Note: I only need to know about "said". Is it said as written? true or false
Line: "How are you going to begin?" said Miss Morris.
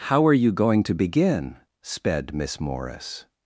false